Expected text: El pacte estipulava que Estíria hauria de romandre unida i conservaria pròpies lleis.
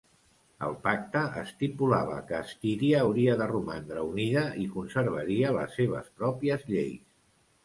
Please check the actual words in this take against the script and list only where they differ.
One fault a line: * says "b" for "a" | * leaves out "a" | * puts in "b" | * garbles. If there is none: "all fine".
* puts in "les seves"